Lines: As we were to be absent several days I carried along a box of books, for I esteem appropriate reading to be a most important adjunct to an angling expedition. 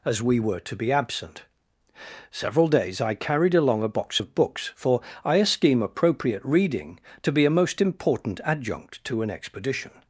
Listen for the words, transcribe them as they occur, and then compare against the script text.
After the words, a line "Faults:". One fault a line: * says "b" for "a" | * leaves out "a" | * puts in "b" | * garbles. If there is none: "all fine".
As we were to be absent several days I carried along a box of books, for I esteem appropriate reading to be a most important adjunct to an expedition.
Faults:
* leaves out "angling"